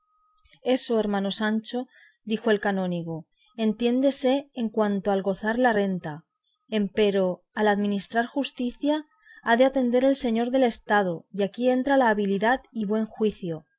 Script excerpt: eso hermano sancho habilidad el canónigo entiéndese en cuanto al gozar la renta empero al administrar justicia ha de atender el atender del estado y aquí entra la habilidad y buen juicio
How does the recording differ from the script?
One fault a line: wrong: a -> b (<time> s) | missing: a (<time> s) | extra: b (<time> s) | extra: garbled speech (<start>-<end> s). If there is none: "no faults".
wrong: habilidad -> dijo (2.2 s)
wrong: atender -> señor (10.2 s)